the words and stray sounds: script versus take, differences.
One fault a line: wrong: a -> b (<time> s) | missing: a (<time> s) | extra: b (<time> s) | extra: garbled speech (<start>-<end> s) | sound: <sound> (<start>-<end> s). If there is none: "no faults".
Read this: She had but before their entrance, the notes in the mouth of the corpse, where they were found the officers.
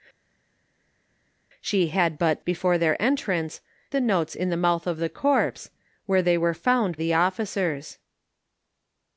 no faults